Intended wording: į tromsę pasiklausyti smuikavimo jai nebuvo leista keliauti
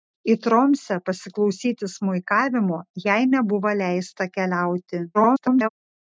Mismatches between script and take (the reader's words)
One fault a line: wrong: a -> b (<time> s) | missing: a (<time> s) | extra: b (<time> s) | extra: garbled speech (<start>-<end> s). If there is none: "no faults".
extra: garbled speech (5.1-5.7 s)